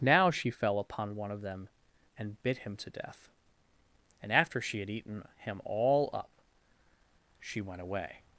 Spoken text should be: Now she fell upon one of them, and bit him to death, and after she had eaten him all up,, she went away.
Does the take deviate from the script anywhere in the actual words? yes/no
no